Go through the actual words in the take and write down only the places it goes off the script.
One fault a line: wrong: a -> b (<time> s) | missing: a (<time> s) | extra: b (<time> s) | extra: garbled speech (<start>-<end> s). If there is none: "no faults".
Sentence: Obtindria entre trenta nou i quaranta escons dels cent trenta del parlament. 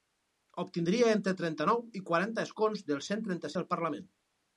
no faults